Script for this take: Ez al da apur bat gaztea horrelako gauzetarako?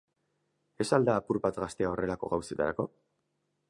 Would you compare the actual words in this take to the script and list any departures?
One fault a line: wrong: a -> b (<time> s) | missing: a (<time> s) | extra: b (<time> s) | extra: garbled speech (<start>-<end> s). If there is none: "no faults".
no faults